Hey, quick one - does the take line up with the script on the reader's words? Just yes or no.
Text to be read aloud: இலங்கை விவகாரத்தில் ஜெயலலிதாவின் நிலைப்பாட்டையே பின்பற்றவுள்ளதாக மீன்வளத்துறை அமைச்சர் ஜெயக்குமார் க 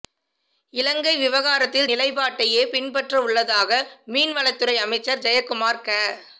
no